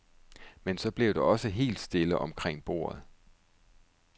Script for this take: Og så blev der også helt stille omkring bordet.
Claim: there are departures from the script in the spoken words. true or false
true